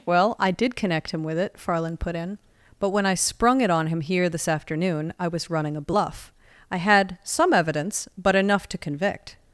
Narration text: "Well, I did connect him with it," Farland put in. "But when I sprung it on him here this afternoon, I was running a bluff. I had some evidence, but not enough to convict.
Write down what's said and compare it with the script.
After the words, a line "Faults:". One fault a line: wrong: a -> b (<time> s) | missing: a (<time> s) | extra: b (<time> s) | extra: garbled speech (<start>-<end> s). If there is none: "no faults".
"Well, I did connect him with it," Farland put in. "But when I sprung it on him here this afternoon, I was running a bluff. I had some evidence, but enough to convict.
Faults:
missing: not (8.4 s)